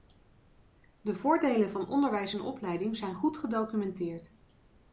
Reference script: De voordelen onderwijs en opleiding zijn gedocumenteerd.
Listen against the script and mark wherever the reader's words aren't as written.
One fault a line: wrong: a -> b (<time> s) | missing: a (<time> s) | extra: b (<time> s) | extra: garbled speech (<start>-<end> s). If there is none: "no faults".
extra: van (1.7 s)
extra: goed (3.1 s)